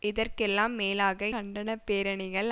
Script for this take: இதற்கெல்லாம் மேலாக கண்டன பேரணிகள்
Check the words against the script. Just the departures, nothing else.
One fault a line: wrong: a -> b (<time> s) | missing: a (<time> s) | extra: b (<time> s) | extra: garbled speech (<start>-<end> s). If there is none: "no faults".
no faults